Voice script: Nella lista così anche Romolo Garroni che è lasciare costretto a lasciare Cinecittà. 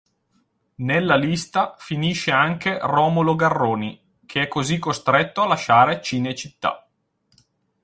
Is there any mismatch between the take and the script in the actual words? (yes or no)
yes